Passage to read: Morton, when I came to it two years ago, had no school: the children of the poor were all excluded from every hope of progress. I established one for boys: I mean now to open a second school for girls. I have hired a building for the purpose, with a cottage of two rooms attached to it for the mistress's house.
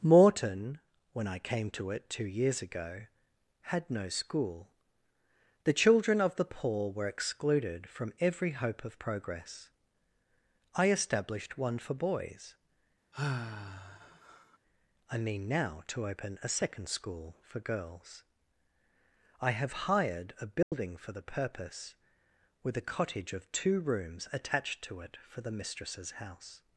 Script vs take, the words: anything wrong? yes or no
yes